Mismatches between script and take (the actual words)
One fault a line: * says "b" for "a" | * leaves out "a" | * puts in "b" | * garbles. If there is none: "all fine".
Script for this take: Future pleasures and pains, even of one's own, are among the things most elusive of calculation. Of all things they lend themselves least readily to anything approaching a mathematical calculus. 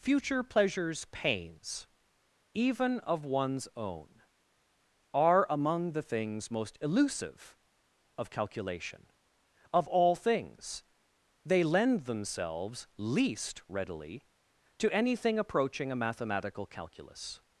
* leaves out "and"